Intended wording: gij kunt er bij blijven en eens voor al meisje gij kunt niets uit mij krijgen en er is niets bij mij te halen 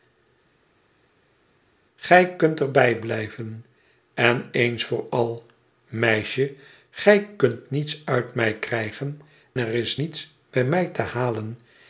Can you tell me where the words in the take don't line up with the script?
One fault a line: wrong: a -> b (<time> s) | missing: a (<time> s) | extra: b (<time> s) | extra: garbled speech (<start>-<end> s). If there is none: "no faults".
missing: en (9.2 s)